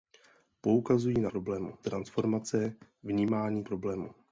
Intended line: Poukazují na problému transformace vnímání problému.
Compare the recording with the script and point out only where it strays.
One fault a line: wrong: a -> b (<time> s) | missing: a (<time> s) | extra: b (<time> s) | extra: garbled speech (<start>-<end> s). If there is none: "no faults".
no faults